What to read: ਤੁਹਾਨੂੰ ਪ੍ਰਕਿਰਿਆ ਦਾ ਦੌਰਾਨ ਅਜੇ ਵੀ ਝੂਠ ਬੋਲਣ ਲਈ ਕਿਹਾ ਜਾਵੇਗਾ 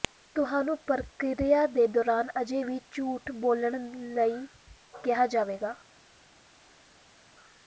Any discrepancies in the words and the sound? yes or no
yes